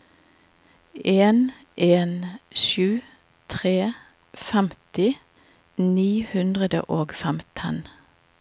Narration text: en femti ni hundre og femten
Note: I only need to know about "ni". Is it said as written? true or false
true